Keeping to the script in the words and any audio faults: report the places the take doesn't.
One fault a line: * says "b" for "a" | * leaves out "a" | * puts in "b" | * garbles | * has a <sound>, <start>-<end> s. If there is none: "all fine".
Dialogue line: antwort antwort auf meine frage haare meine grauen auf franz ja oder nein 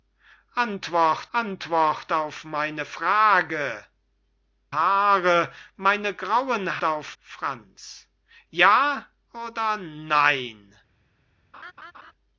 * has a laugh, 11.5-12.1 s